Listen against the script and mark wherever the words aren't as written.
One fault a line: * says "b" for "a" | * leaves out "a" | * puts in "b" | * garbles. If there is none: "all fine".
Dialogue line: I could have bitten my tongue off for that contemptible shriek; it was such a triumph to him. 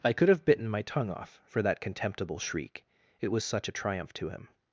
all fine